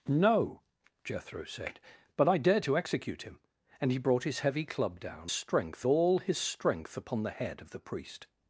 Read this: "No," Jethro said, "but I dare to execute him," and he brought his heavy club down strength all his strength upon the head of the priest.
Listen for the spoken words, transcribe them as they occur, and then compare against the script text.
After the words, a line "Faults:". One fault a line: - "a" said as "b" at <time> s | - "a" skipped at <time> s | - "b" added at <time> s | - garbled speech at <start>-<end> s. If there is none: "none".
"No," Jethro said, "but I dare to execute him," and he brought his heavy club down strength all his strength upon the head of the priest.
Faults:
none